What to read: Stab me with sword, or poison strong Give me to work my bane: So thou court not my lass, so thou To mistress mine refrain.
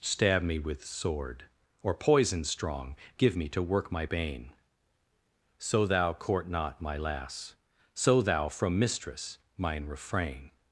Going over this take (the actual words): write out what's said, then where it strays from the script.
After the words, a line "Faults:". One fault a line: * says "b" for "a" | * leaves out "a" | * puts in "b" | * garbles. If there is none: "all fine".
Stab me with sword, or poison strong Give me to work my bane: So thou court not my lass, so thou From mistress mine refrain.
Faults:
* says "From" for "To"